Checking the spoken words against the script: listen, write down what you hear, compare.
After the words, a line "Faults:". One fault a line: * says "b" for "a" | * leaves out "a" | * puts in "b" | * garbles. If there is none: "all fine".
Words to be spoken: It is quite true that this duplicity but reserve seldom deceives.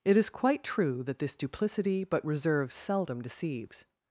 It is quite true that this duplicity but reserve seldom deceives.
Faults:
all fine